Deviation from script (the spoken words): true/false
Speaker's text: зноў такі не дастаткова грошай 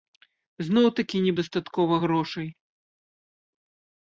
false